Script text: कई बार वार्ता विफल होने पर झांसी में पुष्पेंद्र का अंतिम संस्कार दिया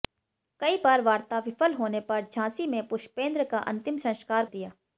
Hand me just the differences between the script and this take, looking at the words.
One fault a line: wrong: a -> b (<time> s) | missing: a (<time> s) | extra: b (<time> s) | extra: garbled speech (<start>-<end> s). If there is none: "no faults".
no faults